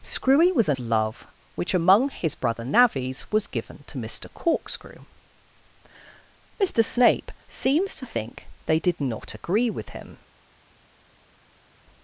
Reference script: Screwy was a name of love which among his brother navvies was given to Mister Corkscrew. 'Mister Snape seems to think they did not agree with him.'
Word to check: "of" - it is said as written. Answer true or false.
false